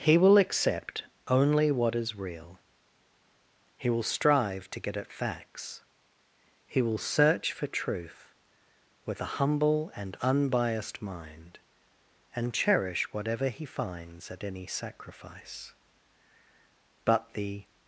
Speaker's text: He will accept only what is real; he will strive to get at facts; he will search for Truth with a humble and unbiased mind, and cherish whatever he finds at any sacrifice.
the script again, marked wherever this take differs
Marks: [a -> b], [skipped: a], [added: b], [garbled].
He will accept only what is real; he will strive to get at facts; he will search for Truth with a humble and unbiased mind, and cherish whatever he finds at any sacrifice. [added: But the]